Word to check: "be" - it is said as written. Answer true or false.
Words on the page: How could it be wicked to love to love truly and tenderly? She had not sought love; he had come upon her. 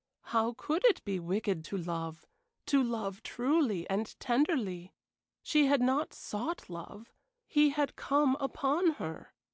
true